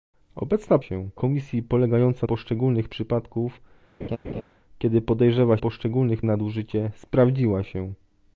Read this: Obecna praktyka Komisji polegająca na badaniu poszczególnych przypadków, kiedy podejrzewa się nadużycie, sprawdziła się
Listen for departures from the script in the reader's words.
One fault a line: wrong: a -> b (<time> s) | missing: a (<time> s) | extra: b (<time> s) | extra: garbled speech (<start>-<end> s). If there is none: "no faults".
wrong: praktyka -> się (0.8 s)
missing: na badaniu (2.3 s)
wrong: się -> poszczególnych (5.6 s)